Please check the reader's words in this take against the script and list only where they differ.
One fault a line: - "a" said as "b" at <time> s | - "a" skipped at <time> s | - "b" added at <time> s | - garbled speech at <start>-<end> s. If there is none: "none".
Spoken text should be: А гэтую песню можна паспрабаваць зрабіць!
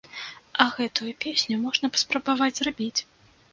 none